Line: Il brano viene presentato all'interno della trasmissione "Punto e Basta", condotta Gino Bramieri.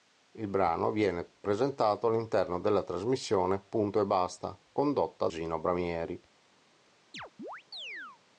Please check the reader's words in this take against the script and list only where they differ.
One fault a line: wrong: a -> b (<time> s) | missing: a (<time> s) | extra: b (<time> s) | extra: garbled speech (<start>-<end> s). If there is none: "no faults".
no faults